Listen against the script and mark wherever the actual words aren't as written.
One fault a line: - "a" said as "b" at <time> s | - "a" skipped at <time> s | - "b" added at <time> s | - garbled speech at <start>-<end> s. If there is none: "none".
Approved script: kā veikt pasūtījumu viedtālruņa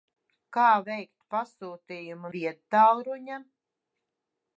none